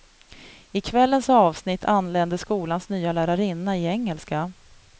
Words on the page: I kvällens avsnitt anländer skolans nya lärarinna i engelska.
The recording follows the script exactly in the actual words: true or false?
true